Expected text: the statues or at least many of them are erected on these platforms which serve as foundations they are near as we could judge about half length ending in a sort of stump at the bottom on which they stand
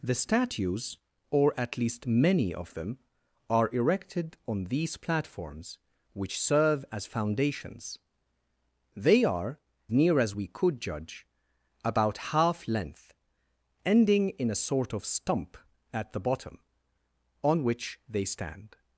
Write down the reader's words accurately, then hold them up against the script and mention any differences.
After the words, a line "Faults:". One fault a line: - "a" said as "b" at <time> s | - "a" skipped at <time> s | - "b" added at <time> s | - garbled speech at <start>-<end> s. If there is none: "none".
the statues or at least many of them are erected on these platforms which serve as foundations they are near as we could judge about half length ending in a sort of stump at the bottom on which they stand
Faults:
none